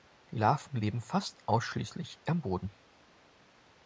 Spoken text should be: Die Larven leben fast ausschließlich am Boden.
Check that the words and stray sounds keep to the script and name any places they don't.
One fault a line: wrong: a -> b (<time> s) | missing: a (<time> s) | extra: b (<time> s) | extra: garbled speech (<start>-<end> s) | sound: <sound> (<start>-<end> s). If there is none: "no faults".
no faults